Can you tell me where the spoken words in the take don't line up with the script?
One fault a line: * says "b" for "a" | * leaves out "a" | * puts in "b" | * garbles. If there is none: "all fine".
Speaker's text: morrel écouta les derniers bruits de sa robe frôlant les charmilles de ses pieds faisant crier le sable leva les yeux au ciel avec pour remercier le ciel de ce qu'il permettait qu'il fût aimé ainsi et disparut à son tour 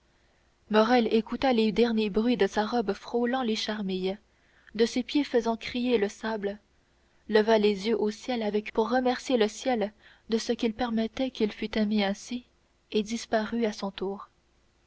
all fine